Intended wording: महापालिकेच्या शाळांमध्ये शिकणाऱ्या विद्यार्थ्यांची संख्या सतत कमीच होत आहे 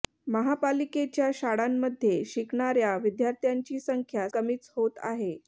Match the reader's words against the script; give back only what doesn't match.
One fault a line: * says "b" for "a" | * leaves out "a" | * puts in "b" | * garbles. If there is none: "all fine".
* leaves out "सतत"